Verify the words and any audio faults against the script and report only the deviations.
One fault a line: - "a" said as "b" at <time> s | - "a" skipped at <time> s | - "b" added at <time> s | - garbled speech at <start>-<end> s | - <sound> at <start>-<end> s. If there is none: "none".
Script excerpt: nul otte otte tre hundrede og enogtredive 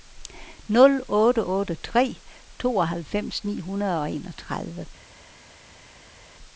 - "tooghalvfems ni" added at 2.6 s